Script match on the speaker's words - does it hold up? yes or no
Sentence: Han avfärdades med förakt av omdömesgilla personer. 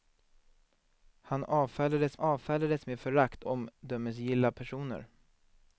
no